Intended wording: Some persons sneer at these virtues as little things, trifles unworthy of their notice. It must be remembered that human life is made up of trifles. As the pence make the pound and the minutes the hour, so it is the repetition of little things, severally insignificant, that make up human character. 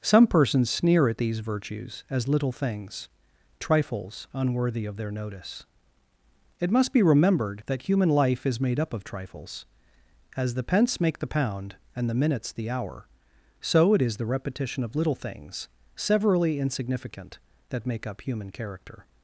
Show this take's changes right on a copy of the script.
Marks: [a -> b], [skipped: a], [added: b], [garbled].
Some persons sneer at these virtues as little things, trifles unworthy of their notice. It must be remembered that human life is made up of trifles. As the pence make the pound and the minutes the hour, so it is the repetition of little things, severally insignificant, that make up human character.